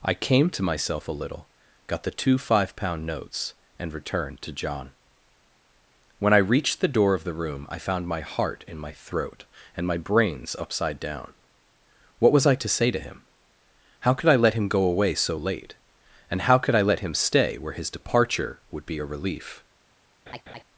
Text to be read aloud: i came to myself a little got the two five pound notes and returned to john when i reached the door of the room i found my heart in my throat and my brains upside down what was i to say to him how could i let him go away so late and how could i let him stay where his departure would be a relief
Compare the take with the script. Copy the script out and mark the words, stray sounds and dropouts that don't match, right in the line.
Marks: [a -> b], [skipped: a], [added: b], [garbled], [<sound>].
i came to myself a little got the two five pound notes and returned to john when i reached the door of the room i found my heart in my throat and my brains upside down what was i to say to him how could i let him go away so late and how could i let him stay where his departure would be a relief [laugh]